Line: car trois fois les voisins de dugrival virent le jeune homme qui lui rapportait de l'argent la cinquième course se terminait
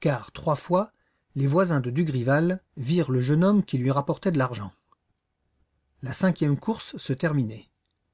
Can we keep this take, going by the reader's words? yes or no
yes